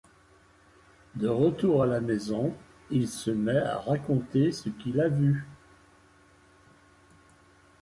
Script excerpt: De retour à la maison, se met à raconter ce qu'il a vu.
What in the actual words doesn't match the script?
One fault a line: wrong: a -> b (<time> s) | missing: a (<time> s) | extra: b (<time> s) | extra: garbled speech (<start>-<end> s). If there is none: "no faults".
extra: il (2.9 s)